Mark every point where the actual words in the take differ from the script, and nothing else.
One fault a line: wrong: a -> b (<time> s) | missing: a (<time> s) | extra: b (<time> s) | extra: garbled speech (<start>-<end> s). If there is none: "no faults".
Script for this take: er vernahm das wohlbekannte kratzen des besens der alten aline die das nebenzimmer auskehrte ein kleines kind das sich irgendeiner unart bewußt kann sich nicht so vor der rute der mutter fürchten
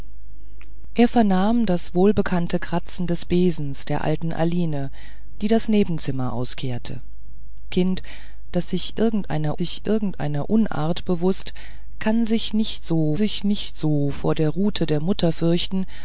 missing: ein kleines (7.0 s)
extra: sich irgendeiner (9.6 s)
extra: sich nicht so (13.1 s)